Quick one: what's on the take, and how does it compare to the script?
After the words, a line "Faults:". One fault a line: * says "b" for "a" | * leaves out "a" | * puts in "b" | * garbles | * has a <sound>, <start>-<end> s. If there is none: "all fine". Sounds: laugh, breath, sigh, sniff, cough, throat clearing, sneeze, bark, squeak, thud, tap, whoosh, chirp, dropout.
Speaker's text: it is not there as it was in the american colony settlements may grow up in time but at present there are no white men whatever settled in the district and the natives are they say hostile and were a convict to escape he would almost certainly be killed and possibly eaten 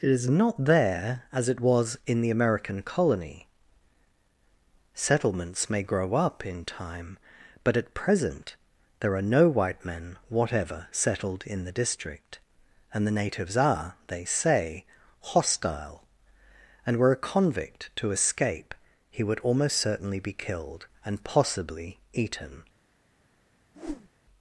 it is not there as it was in the american colony settlements may grow up in time but at present there are no white men whatever settled in the district and the natives are they say hostile and were a convict to escape he would almost certainly be killed and possibly eaten
Faults:
* has a whoosh, 23.7-24.1 s